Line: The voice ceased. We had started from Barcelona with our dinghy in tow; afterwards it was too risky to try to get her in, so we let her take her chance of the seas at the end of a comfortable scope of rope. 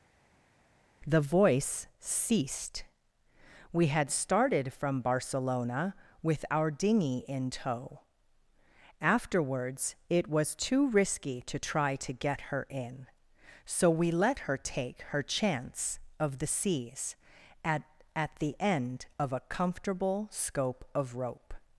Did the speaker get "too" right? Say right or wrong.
right